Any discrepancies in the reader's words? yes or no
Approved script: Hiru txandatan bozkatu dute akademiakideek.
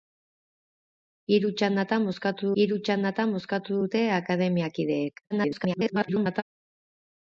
yes